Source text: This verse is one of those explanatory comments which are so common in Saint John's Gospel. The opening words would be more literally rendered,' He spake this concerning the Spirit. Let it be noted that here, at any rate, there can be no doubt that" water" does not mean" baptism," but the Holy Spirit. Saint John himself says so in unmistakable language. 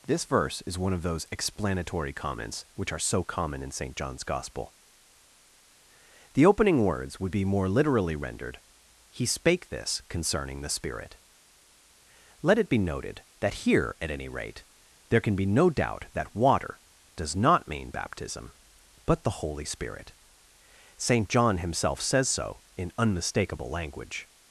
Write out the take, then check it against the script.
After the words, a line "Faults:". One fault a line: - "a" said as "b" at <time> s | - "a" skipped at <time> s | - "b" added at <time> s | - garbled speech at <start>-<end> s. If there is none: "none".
This verse is one of those explanatory comments which are so common in Saint John's Gospel. The opening words would be more literally rendered,' He spake this concerning the Spirit. Let it be noted that here, at any rate, there can be no doubt that" water" does not mean" baptism," but the Holy Spirit. Saint John himself says so in unmistakable language.
Faults:
none